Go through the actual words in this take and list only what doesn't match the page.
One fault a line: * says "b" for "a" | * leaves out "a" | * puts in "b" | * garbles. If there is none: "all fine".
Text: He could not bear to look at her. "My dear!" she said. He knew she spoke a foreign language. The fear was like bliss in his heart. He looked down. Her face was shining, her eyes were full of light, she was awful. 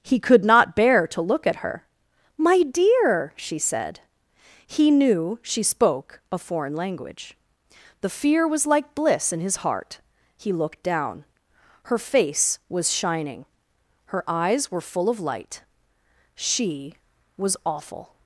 all fine